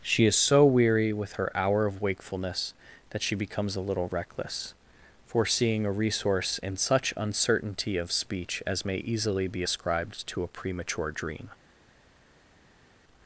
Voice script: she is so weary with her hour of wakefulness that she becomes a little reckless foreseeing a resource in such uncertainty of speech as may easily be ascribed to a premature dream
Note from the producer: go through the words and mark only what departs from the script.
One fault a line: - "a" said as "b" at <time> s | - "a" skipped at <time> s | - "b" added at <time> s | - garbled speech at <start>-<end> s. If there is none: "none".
none